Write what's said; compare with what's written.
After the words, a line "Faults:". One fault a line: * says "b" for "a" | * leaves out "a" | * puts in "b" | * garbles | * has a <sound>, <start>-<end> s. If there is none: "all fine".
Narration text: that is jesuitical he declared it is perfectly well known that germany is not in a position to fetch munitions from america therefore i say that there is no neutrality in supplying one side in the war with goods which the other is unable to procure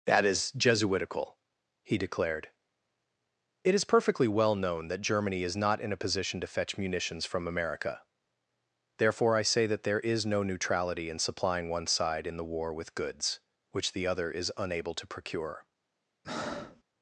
that is jesuitical he declared it is perfectly well known that germany is not in a position to fetch munitions from america therefore i say that there is no neutrality in supplying one side in the war with goods which the other is unable to procure
Faults:
* has a breath, 16.2-16.8 s